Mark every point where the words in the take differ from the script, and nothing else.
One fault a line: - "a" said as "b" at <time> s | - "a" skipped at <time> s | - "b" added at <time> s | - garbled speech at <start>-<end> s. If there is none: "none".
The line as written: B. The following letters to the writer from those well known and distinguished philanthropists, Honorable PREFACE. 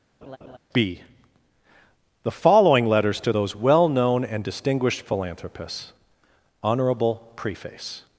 - "the writer from" skipped at 3.3 s